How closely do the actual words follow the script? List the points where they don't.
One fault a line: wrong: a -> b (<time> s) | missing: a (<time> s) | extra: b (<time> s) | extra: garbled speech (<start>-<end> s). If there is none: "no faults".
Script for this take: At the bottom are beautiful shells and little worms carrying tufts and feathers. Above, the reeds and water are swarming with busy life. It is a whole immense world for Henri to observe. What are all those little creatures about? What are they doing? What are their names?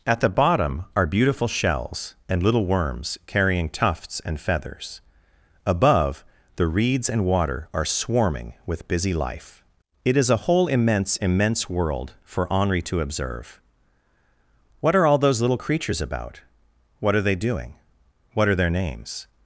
extra: immense (11.2 s)